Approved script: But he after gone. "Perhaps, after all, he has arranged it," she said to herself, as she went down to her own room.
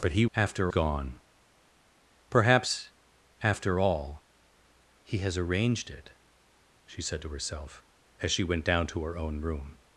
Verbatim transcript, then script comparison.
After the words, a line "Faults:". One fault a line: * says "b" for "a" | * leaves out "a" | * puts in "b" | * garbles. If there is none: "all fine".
But he after gone. "Perhaps, after all, he has arranged it," she said to herself, as she went down to her own room.
Faults:
all fine